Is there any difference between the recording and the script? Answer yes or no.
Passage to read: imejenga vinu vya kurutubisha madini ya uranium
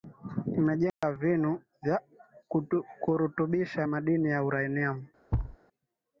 no